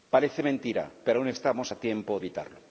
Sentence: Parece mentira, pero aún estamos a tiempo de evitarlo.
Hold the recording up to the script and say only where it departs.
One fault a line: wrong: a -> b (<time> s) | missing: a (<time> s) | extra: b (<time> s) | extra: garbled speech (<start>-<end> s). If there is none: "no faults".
missing: de (2.2 s)